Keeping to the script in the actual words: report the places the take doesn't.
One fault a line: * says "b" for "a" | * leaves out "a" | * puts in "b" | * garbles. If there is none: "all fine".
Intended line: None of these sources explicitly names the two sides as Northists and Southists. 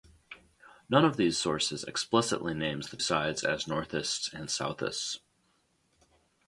* leaves out "two"